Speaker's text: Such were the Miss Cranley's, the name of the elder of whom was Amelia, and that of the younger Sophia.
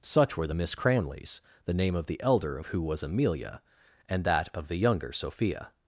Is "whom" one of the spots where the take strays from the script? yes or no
yes